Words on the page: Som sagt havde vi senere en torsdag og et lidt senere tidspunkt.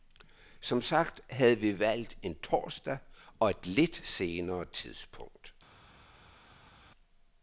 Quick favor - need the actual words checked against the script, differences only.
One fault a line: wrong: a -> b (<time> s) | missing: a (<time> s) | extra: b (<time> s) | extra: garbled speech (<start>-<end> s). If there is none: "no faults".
wrong: senere -> valgt (1.8 s)